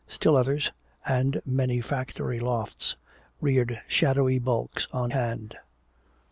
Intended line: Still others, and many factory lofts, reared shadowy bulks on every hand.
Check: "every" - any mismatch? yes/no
yes